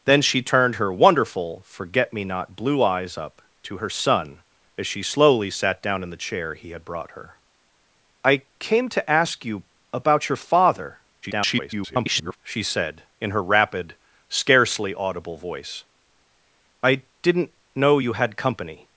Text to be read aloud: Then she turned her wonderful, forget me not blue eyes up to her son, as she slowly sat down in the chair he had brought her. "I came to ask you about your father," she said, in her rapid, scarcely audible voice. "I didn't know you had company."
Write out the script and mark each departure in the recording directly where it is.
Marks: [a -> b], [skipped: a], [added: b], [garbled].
Then she turned her wonderful, forget me not blue eyes up to her son, as she slowly sat down in the chair he had brought her. "I came to ask you about your father," [garbled] she said, in her rapid, scarcely audible voice. "I didn't know you had company."